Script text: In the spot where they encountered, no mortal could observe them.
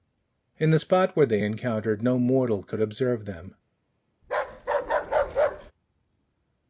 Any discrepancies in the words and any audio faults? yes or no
yes